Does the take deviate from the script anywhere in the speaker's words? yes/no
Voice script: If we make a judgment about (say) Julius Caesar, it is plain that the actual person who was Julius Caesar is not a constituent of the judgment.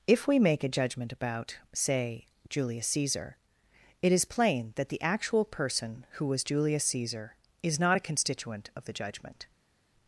no